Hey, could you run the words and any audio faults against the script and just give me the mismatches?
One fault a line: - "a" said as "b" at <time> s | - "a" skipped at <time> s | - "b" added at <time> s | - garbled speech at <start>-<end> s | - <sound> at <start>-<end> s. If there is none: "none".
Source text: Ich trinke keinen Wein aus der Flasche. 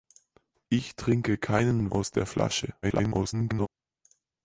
- "Wein" skipped at 1.9 s
- garbled speech at 2.8-3.7 s